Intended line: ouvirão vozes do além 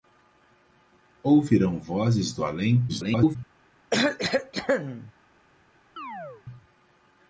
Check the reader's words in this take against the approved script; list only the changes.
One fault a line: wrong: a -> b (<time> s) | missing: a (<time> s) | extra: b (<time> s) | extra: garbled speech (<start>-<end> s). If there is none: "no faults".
extra: garbled speech (2.9-3.4 s)